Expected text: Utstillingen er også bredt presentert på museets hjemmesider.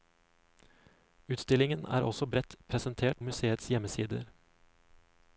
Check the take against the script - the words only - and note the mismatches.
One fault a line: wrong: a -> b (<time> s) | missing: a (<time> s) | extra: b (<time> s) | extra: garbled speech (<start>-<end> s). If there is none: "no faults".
missing: på (3.2 s)